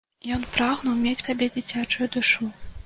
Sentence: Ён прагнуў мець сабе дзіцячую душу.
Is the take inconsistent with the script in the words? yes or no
no